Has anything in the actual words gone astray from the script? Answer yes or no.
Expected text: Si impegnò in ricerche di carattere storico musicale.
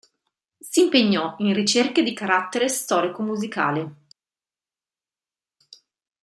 no